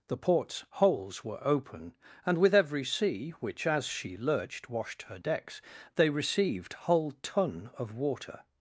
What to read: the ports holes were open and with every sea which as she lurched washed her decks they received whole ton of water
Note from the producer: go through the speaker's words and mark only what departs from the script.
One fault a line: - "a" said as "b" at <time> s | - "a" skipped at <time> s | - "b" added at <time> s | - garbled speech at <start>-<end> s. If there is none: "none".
none